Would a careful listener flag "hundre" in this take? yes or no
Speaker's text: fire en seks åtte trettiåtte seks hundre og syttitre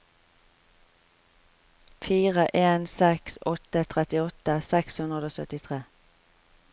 no